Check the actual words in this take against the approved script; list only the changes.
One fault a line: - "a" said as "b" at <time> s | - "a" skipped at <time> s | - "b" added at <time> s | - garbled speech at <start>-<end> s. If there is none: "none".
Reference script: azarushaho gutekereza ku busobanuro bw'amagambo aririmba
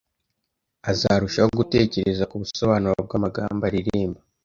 none